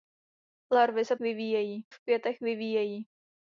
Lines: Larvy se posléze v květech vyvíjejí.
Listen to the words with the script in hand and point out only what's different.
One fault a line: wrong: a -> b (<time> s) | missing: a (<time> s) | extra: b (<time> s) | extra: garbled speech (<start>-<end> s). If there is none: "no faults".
wrong: posléze -> vyvíjejí (1.2 s)